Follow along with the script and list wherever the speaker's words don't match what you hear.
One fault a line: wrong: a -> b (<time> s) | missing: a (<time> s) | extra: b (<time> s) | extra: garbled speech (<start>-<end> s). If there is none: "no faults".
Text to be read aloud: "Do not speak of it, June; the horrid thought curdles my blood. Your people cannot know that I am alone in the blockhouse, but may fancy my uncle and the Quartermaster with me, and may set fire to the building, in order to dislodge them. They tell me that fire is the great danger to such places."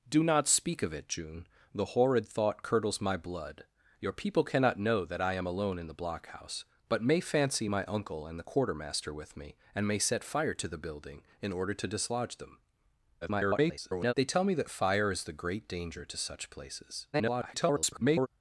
extra: garbled speech (13.2-14.1 s)
extra: garbled speech (17.1-18.3 s)